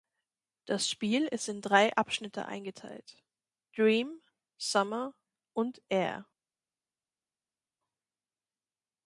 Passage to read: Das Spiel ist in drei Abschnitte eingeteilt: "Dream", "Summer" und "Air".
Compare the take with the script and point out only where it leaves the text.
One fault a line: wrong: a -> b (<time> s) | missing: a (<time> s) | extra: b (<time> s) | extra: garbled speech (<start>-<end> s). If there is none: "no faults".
no faults